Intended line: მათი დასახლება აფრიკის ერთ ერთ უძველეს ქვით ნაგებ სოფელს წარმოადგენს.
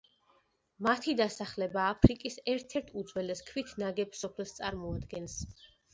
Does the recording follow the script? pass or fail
pass